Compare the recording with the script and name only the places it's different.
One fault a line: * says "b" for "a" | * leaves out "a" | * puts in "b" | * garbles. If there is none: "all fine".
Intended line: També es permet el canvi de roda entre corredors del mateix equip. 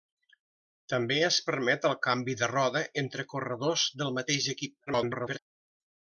* garbles